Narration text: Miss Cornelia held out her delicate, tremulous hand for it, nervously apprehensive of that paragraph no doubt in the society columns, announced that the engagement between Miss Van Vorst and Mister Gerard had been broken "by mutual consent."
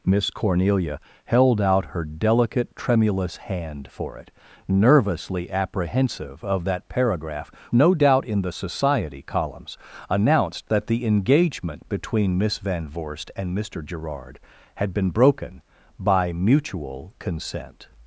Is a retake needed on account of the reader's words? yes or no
no